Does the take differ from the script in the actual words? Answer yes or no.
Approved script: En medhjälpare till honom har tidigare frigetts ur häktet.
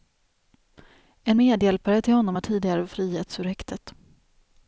no